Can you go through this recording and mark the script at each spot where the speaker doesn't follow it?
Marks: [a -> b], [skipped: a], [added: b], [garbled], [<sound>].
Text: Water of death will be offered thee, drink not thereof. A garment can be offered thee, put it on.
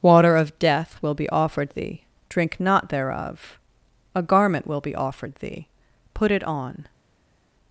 Water of death will be offered thee, drink not thereof. A garment [can -> will] be offered thee, put it on.